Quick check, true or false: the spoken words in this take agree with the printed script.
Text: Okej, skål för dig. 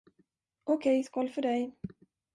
true